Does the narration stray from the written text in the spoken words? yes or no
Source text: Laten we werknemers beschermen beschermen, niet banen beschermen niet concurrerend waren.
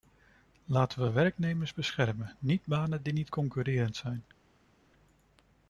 yes